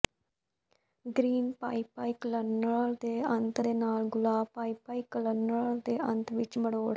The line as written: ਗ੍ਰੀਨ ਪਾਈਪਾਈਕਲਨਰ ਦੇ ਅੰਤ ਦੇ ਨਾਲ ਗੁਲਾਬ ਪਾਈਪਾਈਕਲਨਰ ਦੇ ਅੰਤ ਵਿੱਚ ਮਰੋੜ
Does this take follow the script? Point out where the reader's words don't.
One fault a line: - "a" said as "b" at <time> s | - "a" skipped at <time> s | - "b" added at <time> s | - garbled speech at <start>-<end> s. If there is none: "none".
none